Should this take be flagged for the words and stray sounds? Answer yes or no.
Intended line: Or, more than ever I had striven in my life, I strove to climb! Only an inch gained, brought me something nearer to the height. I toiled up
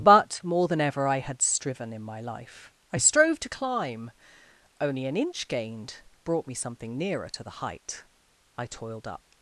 yes